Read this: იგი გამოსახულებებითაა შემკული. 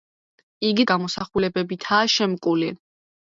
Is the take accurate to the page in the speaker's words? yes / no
yes